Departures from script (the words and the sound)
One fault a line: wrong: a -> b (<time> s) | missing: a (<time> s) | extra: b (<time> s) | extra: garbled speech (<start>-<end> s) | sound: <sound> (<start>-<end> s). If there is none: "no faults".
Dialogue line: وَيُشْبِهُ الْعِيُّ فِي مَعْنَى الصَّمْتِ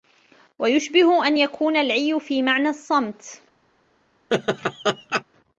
extra: أَنْ يَكُونَ (1.3 s)
sound: laugh (4.3-5.2 s)